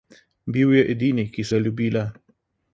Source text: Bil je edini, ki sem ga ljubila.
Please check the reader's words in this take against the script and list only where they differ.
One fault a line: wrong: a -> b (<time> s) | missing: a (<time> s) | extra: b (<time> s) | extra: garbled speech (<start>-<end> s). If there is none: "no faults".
missing: sem (1.5 s)